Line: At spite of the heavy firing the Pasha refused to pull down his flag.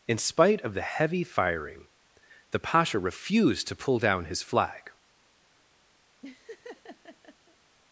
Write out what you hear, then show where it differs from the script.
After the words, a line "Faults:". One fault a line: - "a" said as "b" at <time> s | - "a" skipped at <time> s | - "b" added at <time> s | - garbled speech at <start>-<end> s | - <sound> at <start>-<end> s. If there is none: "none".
In spite of the heavy firing the Pasha refused to pull down his flag.
Faults:
- "At" said as "In" at 0.1 s
- laugh at 6.2-7.6 s